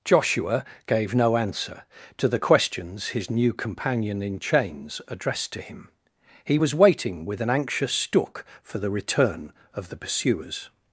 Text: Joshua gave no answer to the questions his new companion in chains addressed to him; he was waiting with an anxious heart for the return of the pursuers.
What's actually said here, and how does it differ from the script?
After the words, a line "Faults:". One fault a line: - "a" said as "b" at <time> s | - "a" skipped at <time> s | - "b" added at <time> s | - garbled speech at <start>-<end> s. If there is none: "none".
Joshua gave no answer to the questions his new companion in chains addressed to him; he was waiting with an anxious stook for the return of the pursuers.
Faults:
- "heart" said as "stook" at 7.9 s